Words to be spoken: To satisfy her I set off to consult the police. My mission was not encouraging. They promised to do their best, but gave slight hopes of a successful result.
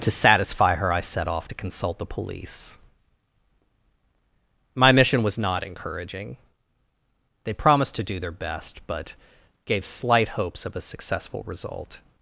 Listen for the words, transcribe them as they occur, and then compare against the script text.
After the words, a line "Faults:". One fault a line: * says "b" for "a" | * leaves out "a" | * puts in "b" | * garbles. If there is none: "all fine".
To satisfy her I set off to consult the police. My mission was not encouraging. They promised to do their best, but gave slight hopes of a successful result.
Faults:
all fine